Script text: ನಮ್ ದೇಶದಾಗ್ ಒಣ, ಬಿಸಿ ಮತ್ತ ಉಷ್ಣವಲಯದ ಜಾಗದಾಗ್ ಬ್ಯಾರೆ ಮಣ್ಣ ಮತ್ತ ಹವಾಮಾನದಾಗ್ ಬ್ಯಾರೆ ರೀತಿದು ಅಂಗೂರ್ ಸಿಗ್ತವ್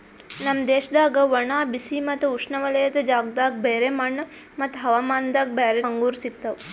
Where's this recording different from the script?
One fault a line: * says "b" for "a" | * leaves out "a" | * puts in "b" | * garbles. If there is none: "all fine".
* leaves out "ರೀತಿದು"